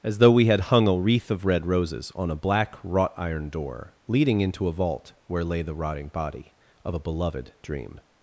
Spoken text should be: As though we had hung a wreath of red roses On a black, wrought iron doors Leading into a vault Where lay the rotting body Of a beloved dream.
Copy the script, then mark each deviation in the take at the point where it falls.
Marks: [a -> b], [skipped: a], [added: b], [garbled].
As though we had hung a wreath of red roses On a black, wrought iron [doors -> door] Leading into a vault Where lay the rotting body Of a beloved dream.